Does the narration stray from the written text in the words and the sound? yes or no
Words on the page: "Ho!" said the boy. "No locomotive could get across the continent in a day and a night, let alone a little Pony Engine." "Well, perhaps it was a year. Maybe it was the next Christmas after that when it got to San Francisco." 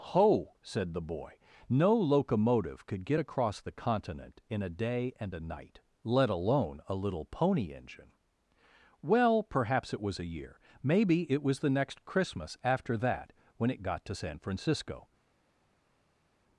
no